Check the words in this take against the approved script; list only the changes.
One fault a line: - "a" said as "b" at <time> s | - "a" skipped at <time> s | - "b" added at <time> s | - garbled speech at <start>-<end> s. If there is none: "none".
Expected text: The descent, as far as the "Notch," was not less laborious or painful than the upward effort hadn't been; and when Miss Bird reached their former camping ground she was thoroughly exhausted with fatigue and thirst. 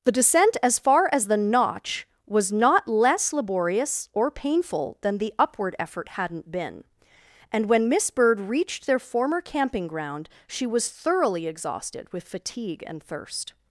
none